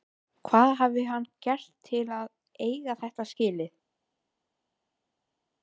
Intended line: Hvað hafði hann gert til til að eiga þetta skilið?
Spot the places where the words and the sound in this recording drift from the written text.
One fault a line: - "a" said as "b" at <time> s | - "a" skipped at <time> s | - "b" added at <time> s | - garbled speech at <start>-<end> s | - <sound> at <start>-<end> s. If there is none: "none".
- "til" skipped at 2.0 s